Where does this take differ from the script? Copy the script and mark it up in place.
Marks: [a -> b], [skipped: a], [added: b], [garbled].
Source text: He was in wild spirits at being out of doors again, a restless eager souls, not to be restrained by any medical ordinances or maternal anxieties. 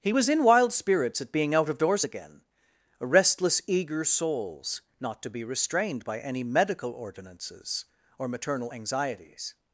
He was in wild spirits at being out of doors again, a restless eager souls, not to be restrained by any medical ordinances or maternal anxieties.